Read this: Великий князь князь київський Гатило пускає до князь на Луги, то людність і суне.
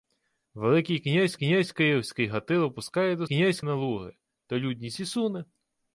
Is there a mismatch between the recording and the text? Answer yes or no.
no